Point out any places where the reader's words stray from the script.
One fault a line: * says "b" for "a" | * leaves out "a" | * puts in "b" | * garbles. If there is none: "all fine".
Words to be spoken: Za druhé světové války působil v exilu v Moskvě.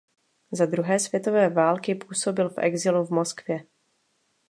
all fine